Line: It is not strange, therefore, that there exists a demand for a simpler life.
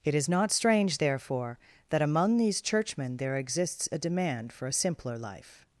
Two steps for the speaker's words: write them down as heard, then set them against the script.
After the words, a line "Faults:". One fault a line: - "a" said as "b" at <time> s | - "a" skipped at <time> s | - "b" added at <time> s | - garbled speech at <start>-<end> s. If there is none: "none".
It is not strange, therefore, that among these churchmen there exists a demand for a simpler life.
Faults:
- "among these churchmen" added at 2.0 s